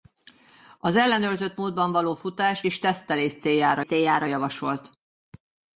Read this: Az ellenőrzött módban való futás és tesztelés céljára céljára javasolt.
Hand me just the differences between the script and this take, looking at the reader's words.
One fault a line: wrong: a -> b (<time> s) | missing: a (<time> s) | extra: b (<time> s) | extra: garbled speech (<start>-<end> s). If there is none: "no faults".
no faults